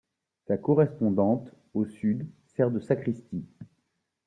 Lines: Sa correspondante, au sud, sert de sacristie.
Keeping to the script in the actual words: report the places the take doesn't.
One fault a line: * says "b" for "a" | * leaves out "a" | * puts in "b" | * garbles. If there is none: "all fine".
all fine